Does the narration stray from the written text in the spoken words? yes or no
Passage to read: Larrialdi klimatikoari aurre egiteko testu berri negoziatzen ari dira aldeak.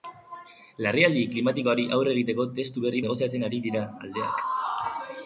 no